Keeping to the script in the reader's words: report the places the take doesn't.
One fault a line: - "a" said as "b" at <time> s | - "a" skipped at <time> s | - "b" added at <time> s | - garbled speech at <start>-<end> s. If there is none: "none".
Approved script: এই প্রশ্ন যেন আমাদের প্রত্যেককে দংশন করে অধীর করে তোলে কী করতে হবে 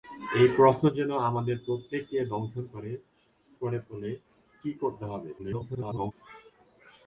- "অধীর" skipped at 2.9 s
- garbled speech at 5.4-6.1 s